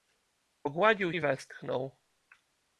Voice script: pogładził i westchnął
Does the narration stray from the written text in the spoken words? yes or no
no